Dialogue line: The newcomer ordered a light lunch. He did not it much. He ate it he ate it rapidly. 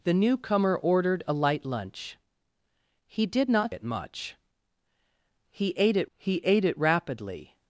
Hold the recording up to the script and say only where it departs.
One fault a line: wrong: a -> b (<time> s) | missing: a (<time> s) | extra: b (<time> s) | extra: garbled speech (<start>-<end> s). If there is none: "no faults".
no faults